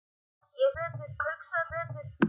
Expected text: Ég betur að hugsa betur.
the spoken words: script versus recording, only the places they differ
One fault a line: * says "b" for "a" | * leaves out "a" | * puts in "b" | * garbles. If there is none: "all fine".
all fine